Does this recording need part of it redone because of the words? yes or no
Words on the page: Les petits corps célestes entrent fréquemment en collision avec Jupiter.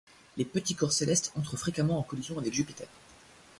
no